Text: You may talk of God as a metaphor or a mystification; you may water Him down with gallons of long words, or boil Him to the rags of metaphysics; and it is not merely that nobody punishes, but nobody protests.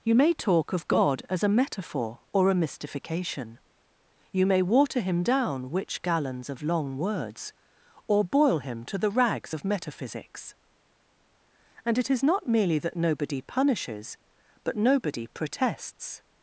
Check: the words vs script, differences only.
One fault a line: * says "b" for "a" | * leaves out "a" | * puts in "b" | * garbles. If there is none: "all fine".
* says "which" for "with"